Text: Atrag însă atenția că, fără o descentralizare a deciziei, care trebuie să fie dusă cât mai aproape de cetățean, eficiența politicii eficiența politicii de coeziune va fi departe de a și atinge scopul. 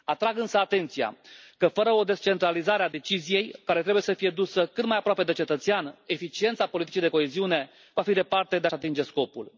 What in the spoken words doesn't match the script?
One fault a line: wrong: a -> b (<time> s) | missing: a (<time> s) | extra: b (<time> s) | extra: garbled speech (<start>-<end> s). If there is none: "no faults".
missing: eficiența politicii (7.0 s)